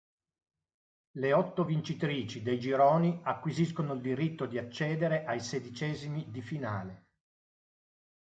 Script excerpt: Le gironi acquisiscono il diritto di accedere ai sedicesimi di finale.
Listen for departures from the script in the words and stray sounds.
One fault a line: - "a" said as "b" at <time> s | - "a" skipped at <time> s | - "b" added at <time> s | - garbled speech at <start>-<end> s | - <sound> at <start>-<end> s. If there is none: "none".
- "otto vincitrici dei" added at 1.3 s